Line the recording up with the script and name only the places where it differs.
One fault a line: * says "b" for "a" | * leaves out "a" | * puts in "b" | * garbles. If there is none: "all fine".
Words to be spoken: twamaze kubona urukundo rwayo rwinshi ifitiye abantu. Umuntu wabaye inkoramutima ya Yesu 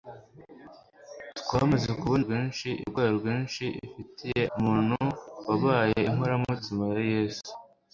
* says "rwinshi" for "urukundo"
* leaves out "abantu"